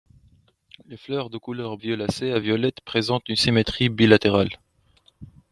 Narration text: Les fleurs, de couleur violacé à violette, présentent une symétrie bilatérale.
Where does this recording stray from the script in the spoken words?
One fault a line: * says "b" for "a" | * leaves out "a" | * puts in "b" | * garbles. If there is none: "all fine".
all fine